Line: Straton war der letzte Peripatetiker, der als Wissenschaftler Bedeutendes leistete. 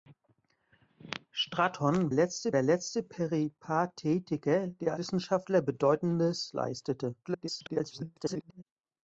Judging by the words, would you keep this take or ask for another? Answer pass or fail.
fail